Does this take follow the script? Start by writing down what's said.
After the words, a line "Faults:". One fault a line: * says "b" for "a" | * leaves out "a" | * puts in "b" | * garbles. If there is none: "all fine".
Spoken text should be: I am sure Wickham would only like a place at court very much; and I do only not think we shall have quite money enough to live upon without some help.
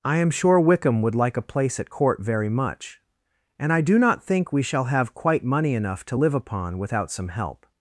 I am sure Wickham would like a place at court very much; and I do not think we shall have quite money enough to live upon without some help.
Faults:
* leaves out "only"
* leaves out "only"